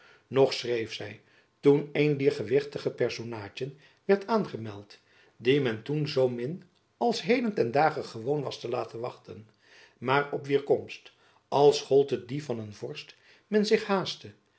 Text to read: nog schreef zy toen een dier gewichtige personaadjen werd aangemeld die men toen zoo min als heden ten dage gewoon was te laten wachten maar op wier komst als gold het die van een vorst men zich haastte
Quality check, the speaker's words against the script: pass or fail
pass